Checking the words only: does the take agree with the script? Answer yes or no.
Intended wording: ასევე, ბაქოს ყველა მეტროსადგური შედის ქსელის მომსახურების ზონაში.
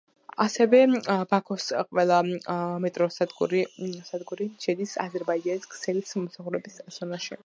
no